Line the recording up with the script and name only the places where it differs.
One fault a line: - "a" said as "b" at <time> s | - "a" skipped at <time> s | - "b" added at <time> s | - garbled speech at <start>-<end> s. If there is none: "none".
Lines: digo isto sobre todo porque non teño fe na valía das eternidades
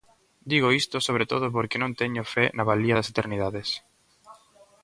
none